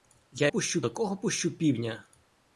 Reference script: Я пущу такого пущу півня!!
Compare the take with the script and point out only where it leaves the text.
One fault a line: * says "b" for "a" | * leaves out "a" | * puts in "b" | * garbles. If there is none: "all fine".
all fine